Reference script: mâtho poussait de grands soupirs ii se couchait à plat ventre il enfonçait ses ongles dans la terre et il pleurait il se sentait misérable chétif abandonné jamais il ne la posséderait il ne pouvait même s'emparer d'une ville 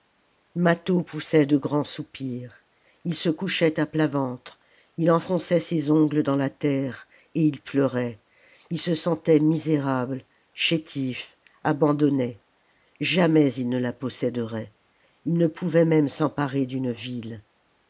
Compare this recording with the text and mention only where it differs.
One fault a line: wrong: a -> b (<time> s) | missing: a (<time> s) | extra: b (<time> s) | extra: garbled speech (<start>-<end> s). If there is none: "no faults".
no faults